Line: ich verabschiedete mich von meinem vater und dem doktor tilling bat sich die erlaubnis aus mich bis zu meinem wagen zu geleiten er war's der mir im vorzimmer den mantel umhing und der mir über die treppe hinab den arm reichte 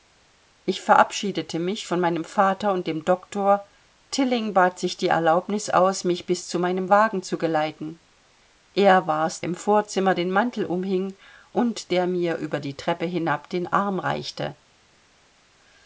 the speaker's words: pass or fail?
fail